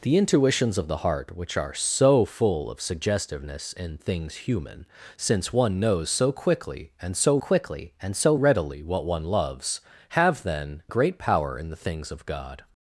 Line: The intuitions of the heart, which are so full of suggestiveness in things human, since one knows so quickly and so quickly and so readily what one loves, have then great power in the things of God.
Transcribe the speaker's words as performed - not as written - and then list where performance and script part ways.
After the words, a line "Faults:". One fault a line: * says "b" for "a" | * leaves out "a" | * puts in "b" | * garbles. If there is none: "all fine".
The intuitions of the heart, which are so full of suggestiveness in things human, since one knows so quickly and so quickly and so readily what one loves, have then great power in the things of God.
Faults:
all fine